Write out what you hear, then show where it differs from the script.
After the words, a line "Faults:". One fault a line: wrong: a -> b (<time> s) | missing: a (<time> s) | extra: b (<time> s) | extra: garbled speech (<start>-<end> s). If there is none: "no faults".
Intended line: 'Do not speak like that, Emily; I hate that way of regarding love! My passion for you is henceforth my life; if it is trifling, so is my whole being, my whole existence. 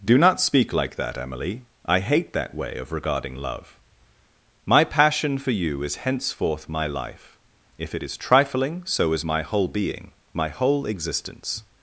'Do not speak like that, Emily; I hate that way of regarding love! My passion for you is henceforth my life; if it is trifling, so is my whole being, my whole existence.
Faults:
no faults